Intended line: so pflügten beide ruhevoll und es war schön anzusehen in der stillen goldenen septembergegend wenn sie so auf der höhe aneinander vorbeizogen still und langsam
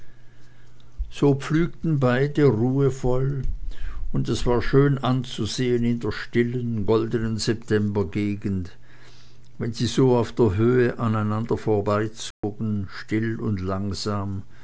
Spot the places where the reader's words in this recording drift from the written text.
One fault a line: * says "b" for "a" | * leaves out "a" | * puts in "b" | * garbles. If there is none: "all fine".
all fine